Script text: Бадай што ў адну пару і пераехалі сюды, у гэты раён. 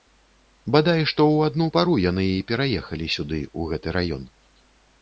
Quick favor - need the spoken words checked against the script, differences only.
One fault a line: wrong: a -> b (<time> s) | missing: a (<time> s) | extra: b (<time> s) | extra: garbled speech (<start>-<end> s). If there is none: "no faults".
extra: яны (2.1 s)